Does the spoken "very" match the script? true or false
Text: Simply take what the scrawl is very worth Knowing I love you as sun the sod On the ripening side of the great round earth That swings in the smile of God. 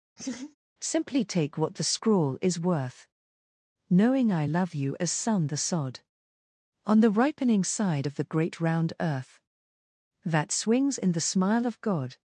false